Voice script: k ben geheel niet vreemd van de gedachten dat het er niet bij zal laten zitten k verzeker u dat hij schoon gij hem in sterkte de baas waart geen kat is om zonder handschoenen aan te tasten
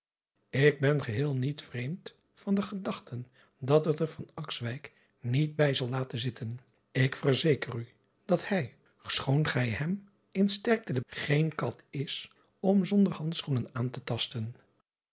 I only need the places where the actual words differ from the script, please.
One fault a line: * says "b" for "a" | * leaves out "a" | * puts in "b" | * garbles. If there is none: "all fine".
* leaves out "baas waart"